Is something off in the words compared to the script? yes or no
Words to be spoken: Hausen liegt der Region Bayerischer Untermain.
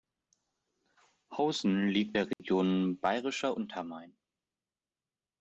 no